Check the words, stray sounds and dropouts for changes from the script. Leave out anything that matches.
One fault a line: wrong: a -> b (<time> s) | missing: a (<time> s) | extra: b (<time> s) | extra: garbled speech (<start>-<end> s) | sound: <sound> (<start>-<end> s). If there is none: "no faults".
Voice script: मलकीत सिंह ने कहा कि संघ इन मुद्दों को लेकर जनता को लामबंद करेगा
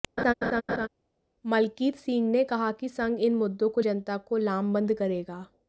sound: laugh (0.2-0.9 s)
missing: लेकर (3.8 s)